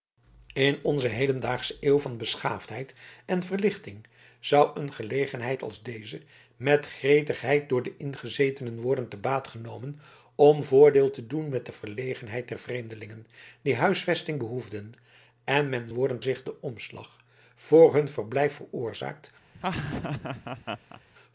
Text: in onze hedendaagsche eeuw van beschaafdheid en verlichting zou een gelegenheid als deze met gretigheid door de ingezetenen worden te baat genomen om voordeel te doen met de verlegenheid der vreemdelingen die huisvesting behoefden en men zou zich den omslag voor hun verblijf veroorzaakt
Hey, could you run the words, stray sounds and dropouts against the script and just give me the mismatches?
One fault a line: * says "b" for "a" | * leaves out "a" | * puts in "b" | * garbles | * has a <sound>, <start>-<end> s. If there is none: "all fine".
* says "worden" for "zou"
* has a laugh, 19.5-21.0 s